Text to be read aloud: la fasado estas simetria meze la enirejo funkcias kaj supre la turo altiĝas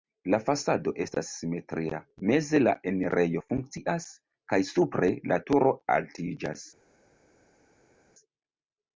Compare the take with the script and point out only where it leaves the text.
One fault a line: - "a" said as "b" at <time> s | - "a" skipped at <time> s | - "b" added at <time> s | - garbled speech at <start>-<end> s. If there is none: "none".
none